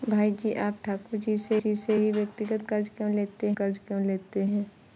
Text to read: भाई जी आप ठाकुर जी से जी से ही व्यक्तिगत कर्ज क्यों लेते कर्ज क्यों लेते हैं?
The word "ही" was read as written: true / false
true